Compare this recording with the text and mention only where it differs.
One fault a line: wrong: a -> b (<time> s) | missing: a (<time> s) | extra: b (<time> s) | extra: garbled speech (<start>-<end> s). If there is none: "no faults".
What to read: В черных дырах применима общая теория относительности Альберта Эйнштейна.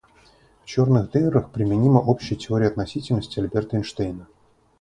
no faults